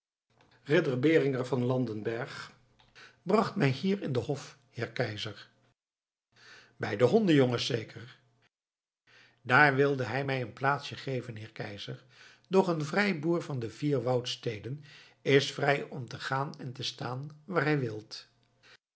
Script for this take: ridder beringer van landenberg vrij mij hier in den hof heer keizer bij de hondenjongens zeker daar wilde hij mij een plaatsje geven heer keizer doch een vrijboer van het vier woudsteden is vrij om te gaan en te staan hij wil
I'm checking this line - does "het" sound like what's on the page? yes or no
no